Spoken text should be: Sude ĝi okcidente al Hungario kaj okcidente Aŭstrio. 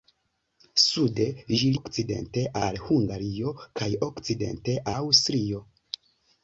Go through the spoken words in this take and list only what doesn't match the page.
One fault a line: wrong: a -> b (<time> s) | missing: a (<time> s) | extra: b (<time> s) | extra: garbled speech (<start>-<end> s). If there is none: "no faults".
no faults